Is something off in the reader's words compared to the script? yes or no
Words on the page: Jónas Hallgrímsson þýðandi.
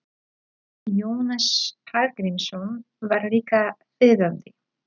yes